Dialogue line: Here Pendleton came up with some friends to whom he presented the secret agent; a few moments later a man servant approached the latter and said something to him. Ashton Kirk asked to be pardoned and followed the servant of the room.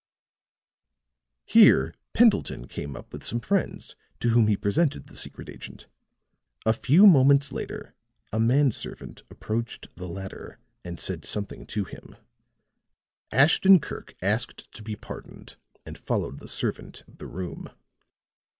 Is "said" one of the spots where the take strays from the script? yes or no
no